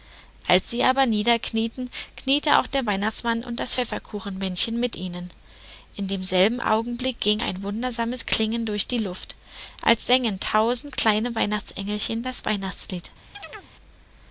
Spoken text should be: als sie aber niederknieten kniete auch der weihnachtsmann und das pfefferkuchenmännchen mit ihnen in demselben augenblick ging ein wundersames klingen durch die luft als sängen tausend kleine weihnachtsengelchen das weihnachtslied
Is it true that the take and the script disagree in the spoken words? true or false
false